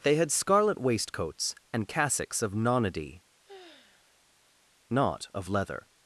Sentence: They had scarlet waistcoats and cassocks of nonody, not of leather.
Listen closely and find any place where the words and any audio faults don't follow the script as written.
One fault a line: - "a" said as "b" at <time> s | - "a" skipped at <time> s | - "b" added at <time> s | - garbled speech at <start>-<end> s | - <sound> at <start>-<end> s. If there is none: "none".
- sigh at 3.4-4.6 s